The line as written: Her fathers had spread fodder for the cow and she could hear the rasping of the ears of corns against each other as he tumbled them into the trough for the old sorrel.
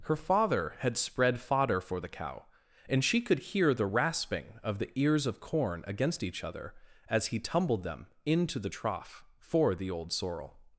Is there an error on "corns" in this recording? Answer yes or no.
yes